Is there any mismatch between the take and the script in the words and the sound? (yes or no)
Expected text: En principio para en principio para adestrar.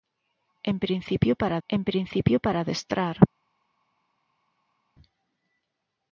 no